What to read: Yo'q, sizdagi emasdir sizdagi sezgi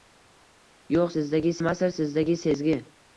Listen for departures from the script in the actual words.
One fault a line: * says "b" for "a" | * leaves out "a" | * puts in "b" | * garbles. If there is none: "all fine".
all fine